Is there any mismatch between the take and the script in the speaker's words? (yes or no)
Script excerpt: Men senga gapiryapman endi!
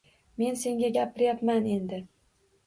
no